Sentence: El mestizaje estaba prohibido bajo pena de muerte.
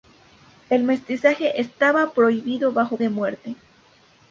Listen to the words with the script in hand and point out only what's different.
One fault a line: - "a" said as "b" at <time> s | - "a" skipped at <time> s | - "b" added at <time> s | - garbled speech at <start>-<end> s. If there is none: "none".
- "pena" skipped at 3.0 s